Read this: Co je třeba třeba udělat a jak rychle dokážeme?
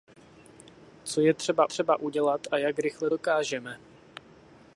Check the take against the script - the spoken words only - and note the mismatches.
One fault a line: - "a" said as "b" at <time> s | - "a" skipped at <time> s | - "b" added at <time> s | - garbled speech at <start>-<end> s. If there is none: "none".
none